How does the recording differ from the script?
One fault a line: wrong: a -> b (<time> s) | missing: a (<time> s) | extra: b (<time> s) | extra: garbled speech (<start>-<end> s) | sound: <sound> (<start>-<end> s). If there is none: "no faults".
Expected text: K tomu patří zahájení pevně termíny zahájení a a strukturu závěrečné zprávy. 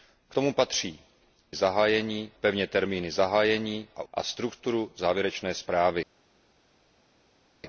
no faults